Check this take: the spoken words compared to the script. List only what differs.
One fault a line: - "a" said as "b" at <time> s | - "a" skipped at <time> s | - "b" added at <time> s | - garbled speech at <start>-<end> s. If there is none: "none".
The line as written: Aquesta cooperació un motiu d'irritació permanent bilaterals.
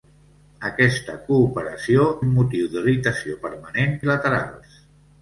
none